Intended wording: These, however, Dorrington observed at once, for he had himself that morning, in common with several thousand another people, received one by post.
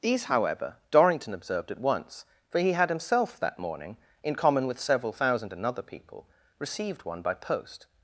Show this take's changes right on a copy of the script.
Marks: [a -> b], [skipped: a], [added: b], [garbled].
These, however, Dorrington observed at once, for he had himself that morning, in common with several thousand another people, received one by post.